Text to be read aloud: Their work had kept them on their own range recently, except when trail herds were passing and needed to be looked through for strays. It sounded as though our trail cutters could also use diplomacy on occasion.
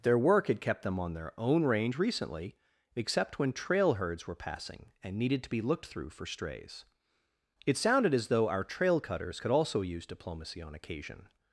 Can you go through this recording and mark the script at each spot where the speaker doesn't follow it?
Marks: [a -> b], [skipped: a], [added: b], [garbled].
Their work had kept them on their own range recently, except when trail herds were passing and needed to be looked through for strays. It sounded as though our trail cutters could also use diplomacy on occasion.